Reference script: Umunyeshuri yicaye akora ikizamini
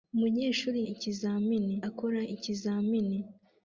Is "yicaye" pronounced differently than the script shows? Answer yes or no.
yes